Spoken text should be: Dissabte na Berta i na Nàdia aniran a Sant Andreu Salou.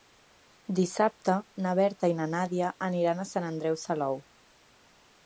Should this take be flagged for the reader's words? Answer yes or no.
no